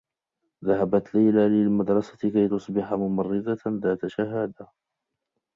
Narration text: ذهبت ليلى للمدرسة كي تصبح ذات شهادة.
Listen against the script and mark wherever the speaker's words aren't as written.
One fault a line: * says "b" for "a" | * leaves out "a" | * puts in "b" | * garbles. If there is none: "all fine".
* puts in "ممرّضة"